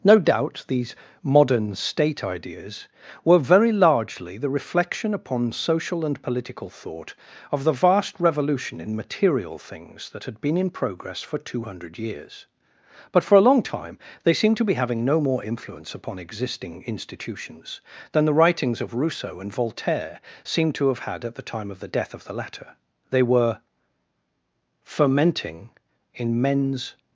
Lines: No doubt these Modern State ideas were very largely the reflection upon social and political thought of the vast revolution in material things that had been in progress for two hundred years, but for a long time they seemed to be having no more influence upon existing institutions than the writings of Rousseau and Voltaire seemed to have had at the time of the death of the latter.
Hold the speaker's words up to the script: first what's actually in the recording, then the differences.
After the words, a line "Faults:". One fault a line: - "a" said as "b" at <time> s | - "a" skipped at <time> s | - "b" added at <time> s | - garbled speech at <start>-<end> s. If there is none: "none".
No doubt these Modern State ideas were very largely the reflection upon social and political thought of the vast revolution in material things that had been in progress for two hundred years, but for a long time they seemed to be having no more influence upon existing institutions than the writings of Rousseau and Voltaire seemed to have had at the time of the death of the latter. They were fermenting in men's
Faults:
- "They were fermenting in men's" added at 23.1 s